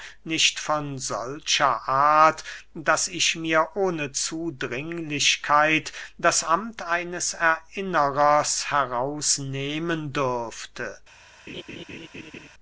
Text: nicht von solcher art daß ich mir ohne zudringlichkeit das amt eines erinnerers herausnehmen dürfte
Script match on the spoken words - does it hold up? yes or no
yes